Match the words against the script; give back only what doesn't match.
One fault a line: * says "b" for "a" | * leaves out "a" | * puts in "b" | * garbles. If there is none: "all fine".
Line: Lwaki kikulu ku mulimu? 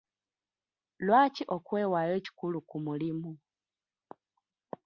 * puts in "okwewaayo"